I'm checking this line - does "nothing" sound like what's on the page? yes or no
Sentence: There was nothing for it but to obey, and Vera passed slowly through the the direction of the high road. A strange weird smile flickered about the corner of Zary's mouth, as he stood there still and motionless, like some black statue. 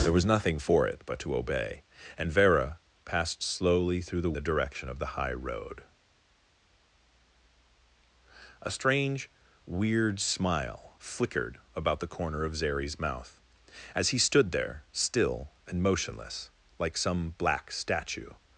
yes